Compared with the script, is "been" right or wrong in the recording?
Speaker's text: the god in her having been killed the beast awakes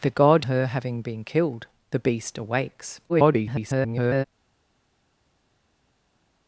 right